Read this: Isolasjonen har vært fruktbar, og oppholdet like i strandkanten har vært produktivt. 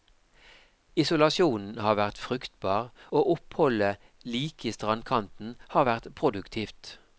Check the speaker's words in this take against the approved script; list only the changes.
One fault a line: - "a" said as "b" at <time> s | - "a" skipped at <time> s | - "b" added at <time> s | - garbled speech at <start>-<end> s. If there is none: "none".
none